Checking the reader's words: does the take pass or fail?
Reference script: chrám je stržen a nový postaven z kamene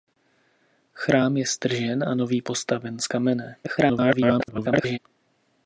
fail